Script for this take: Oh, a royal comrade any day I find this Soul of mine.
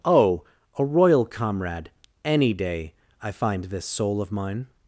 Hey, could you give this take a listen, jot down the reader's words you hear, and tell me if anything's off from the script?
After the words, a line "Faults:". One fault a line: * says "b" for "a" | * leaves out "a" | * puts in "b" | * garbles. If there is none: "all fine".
Oh, a royal comrade any day I find this Soul of mine.
Faults:
all fine